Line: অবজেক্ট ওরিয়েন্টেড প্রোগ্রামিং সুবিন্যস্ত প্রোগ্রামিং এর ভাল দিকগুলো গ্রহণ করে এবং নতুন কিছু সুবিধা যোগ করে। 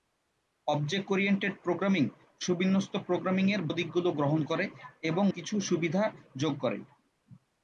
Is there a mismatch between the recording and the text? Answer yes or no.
yes